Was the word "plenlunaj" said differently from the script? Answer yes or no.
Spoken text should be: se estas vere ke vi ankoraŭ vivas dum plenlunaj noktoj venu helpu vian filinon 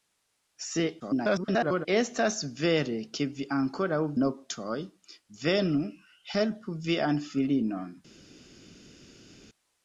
yes